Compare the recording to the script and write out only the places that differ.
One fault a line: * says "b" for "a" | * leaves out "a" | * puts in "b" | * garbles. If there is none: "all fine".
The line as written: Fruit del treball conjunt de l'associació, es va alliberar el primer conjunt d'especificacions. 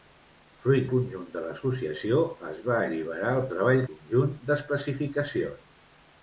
* leaves out "del treball"
* says "treball" for "primer"